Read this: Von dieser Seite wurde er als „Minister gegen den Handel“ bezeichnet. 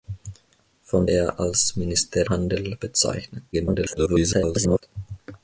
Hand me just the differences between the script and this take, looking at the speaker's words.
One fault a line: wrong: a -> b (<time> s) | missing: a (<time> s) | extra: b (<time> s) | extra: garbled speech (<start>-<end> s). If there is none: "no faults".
missing: dieser Seite wurde (1.1 s)
missing: gegen den (2.2 s)
extra: garbled speech (3.5-4.8 s)